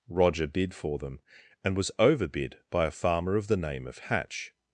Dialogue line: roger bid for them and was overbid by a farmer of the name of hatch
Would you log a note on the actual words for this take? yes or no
no